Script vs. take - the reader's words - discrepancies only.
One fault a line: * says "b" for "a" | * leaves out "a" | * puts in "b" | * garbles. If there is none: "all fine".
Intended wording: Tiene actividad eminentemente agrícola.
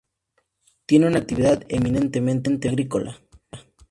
* puts in "una"